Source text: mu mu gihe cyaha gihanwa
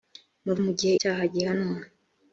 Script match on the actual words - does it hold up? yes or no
yes